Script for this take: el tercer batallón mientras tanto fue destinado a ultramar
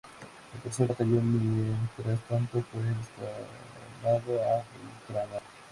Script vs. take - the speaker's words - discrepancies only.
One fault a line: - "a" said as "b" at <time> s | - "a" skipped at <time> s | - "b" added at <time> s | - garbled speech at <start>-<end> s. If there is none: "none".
none